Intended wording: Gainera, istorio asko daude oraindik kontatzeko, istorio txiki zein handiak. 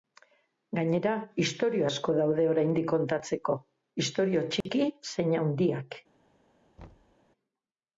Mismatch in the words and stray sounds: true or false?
true